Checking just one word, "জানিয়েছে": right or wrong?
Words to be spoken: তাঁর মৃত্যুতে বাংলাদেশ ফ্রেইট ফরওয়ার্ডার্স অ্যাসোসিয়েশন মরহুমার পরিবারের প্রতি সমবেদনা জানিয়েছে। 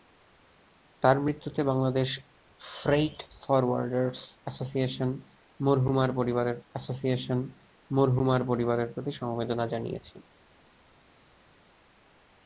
right